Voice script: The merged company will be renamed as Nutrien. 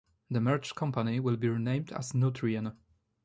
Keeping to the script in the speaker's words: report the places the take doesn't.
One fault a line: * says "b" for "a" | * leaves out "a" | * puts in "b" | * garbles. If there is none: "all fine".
all fine